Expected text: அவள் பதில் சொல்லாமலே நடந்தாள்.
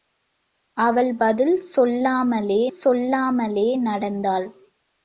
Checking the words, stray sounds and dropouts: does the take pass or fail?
fail